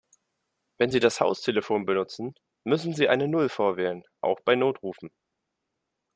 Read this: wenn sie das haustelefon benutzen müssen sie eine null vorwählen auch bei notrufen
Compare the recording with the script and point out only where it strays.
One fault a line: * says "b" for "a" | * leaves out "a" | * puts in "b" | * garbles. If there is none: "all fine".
all fine